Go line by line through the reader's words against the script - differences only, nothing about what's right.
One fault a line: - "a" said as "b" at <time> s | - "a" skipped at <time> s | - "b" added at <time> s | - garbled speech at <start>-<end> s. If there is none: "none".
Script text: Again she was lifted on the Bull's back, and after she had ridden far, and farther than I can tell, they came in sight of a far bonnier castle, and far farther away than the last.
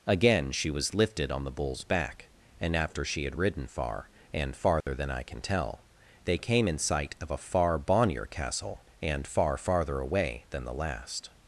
none